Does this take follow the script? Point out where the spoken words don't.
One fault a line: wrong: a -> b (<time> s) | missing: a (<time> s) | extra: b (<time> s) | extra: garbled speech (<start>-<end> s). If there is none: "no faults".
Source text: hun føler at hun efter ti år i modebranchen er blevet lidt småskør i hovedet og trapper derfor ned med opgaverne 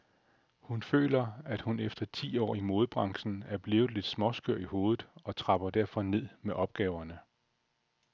no faults